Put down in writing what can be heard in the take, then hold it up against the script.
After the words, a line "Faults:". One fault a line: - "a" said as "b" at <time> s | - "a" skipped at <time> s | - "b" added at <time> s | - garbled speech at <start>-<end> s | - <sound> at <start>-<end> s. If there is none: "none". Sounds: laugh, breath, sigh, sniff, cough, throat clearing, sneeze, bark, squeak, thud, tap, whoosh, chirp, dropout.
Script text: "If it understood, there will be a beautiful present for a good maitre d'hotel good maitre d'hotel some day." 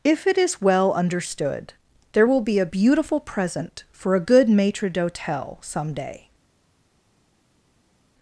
"If it is well understood, there will be a beautiful present for a good maitre d'hotel some day."
Faults:
- "is well" added at 0.3 s
- "good maitre d'hotel" skipped at 5.6 s